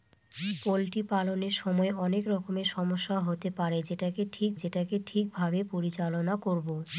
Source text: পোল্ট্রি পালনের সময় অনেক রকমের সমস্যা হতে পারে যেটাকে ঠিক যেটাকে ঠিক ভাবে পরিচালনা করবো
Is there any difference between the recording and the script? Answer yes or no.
no